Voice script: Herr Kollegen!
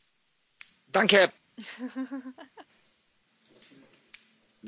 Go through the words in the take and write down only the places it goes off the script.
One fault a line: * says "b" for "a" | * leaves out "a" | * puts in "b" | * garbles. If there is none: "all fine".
all fine